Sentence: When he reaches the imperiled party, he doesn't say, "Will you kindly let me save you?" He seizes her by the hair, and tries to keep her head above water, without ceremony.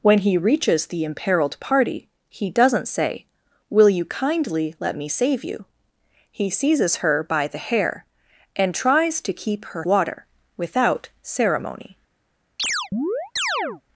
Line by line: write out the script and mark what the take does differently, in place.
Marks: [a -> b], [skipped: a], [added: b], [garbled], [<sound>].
When he reaches the imperiled party, he doesn't say, "Will you kindly let me save you?" He seizes her by the hair, and tries to keep her [skipped: head above] water, without ceremony. [chirp]